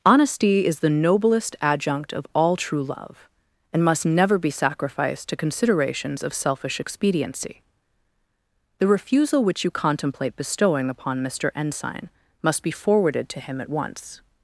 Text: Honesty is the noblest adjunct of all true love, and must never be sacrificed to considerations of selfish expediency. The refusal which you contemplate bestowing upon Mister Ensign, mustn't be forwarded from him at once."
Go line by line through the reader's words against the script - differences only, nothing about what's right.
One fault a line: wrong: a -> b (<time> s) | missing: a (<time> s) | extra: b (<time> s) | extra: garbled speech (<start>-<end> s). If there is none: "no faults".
wrong: mustn't -> must (12.4 s)
wrong: from -> to (13.3 s)